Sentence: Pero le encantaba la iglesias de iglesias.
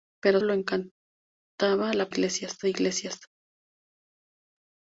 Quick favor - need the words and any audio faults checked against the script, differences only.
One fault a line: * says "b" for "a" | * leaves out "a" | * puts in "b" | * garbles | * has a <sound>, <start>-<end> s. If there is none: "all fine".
all fine